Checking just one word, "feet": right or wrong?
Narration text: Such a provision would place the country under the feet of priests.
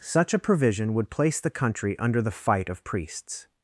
wrong